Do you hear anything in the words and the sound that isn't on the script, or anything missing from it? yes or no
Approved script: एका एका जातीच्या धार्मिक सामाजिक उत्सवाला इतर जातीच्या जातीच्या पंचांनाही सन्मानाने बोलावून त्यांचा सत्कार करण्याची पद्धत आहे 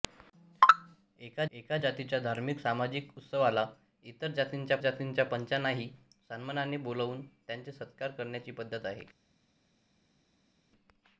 no